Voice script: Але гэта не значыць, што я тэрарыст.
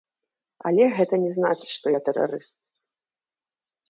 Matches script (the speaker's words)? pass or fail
pass